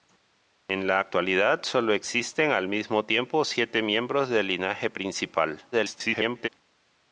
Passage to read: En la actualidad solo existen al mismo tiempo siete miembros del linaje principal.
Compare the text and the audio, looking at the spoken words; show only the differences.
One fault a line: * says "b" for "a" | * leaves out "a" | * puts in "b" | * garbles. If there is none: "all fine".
* garbles